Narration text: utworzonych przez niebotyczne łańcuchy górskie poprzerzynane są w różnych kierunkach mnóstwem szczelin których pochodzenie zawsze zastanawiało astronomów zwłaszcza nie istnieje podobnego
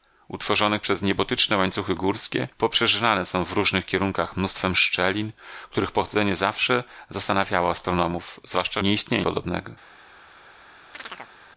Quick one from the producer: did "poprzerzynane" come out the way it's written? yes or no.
yes